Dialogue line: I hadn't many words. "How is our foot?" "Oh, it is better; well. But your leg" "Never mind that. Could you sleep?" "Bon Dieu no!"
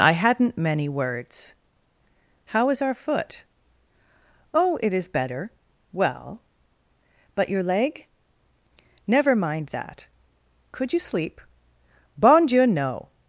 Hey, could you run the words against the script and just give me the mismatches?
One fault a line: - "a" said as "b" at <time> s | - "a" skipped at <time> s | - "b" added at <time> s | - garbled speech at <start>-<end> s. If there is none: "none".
none